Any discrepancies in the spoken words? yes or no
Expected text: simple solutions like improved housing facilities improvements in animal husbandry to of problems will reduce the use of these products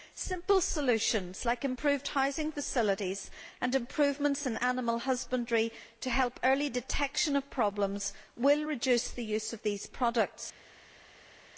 yes